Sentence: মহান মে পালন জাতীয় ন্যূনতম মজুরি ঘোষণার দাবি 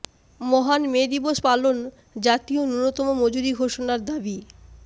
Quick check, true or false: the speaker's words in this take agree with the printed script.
false